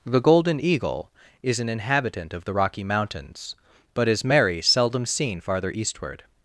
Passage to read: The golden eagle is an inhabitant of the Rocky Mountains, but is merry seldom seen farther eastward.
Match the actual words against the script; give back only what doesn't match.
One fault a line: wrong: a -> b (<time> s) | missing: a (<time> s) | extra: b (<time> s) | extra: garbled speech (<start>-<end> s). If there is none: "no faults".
no faults